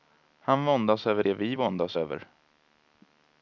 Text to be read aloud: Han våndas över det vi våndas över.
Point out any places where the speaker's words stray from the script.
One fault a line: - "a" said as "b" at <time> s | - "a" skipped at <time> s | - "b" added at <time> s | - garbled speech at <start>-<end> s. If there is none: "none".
none